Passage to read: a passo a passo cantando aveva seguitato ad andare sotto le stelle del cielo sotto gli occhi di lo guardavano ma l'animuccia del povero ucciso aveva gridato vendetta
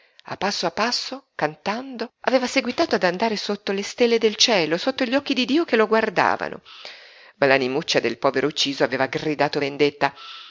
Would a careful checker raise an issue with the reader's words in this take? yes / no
yes